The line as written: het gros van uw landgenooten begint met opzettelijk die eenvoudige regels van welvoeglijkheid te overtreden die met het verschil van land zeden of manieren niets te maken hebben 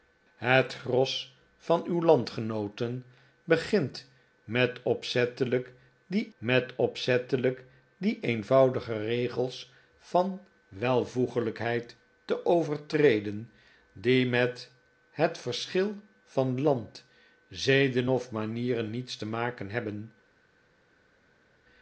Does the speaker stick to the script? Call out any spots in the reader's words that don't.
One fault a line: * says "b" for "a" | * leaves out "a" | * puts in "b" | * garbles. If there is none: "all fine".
* puts in "met opzettelijk die"